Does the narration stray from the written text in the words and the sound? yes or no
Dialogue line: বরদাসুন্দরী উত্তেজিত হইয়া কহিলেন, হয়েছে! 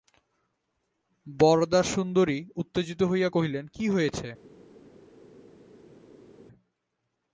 yes